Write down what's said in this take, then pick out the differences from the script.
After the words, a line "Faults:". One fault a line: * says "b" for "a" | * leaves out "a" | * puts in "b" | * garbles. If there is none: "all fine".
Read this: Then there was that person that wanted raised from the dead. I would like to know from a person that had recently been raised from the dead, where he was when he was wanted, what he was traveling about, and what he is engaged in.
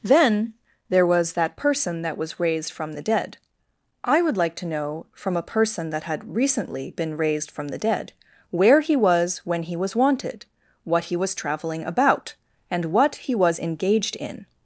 Then there was that person that was raised from the dead. I would like to know from a person that had recently been raised from the dead, where he was when he was wanted, what he was traveling about, and what he was engaged in.
Faults:
* says "was" for "wanted"
* says "was" for "is"